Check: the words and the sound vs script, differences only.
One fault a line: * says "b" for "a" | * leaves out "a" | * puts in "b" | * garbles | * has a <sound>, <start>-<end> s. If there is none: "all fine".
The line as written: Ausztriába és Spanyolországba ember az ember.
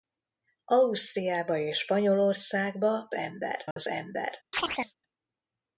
* has a dropout, 3.7-3.8 s
* has a chirp, 4.5-4.9 s